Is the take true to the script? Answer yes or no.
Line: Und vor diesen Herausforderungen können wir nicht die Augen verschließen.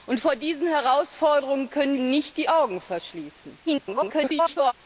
no